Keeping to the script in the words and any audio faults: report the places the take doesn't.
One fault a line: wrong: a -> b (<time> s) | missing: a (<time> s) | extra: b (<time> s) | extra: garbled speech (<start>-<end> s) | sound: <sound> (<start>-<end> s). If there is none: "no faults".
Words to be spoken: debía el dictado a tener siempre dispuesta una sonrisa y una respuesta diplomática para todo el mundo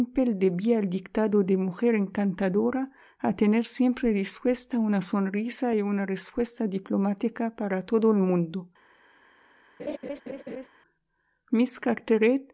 extra: de mujer encantadora (1.4 s)
sound: laugh (9.8-10.7 s)